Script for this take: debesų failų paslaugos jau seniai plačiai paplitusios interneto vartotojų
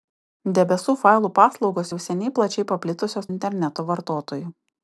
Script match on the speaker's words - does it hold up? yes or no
yes